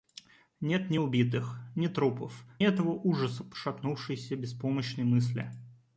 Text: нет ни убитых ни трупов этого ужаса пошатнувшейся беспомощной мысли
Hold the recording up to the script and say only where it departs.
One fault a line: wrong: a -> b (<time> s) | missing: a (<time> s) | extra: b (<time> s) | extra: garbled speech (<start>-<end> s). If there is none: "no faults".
no faults